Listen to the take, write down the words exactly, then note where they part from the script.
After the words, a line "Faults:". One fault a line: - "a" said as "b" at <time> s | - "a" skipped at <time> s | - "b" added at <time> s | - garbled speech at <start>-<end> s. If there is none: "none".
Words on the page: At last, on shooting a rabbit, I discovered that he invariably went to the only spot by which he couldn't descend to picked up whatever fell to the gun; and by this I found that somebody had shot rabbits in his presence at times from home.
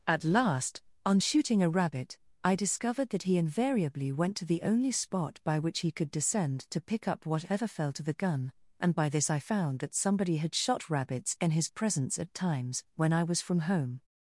At last, on shooting a rabbit, I discovered that he invariably went to the only spot by which he could descend to pick up whatever fell to the gun; and by this I found that somebody had shot rabbits in his presence at times when I was from home.
Faults:
- "couldn't" said as "could" at 5.9 s
- "picked" said as "pick" at 6.8 s
- "when I was" added at 13.0 s